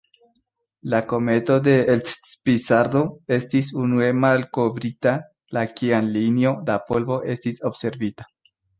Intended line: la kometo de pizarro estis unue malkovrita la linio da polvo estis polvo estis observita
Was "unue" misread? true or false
false